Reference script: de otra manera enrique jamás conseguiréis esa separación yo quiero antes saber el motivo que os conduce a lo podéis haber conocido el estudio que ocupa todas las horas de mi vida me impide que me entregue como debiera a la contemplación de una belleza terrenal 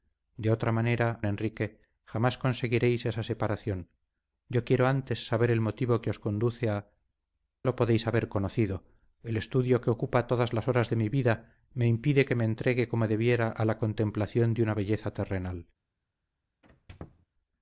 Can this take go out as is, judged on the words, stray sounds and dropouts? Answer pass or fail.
fail